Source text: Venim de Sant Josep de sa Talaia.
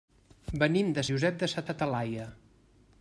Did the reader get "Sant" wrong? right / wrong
wrong